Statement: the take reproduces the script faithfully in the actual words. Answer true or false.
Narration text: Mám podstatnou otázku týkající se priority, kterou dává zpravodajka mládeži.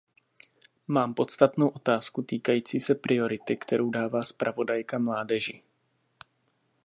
true